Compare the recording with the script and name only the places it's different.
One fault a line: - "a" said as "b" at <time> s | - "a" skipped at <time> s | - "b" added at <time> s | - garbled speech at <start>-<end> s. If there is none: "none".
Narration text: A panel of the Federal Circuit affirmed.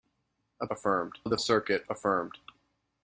- "panel" said as "affirmed" at 0.7 s
- "Federal" skipped at 1.4 s